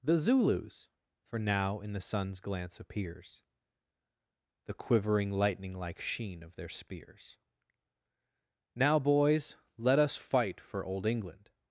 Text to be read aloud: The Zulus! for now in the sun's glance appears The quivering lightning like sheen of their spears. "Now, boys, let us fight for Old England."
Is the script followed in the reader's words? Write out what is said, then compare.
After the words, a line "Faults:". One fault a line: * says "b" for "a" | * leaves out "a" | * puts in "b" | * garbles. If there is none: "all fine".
The Zulus! for now in the sun's glance appears The quivering lightning like sheen of their spears. "Now, boys, let us fight for Old England."
Faults:
all fine